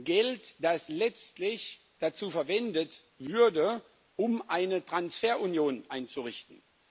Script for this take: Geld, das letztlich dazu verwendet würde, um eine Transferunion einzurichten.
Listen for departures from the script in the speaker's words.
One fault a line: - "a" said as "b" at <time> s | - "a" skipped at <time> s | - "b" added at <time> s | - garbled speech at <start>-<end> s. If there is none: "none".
none